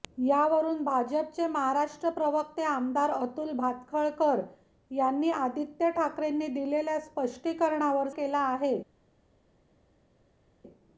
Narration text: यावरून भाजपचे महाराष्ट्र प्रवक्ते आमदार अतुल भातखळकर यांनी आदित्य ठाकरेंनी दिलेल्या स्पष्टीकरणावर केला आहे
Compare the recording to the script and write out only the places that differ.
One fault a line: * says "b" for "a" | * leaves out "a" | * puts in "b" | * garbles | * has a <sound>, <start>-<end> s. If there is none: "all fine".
all fine